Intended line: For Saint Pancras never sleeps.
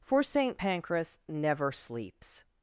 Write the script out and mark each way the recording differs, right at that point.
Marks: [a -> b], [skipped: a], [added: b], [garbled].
For Saint Pancras never sleeps.